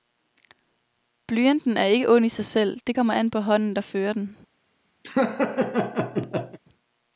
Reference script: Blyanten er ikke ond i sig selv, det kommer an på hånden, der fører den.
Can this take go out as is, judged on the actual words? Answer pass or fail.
pass